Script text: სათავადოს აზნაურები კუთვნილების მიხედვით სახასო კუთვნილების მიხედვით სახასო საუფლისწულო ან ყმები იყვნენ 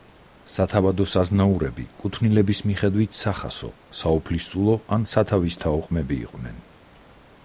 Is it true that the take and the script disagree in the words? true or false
true